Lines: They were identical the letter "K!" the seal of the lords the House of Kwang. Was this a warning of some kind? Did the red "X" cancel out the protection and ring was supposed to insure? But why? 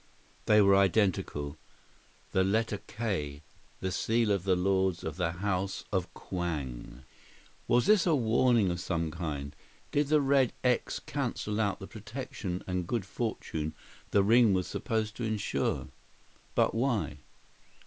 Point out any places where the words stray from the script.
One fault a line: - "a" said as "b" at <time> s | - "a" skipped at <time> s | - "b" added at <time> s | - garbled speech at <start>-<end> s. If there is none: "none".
- "of" added at 5.0 s
- "good fortune the" added at 12.9 s